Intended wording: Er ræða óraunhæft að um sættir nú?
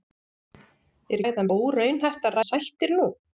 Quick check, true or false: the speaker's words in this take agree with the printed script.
true